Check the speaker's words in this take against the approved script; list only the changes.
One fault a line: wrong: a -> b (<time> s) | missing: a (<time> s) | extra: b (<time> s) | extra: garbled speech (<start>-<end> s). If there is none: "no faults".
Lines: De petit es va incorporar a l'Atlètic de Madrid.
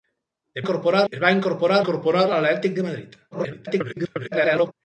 wrong: petit -> incorporar (0.6 s)
extra: incorporar (1.8 s)
extra: garbled speech (3.3-4.7 s)